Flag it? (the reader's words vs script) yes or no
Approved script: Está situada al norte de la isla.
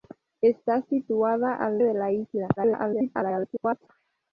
yes